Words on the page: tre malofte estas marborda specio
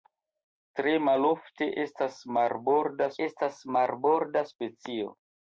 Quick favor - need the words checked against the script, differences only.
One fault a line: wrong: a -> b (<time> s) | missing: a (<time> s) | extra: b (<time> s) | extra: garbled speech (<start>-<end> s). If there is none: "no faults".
extra: estas marborda (3.3 s)